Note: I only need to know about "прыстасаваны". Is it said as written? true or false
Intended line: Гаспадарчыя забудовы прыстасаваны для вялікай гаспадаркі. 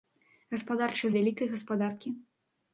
false